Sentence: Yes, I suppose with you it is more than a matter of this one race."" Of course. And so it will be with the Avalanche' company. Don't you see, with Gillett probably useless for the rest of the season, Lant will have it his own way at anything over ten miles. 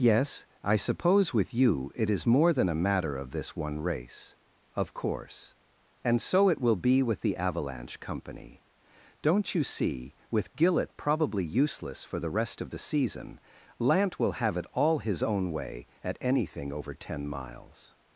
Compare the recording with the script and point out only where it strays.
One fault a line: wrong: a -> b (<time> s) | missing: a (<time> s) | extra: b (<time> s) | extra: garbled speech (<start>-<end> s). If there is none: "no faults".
extra: all (14.7 s)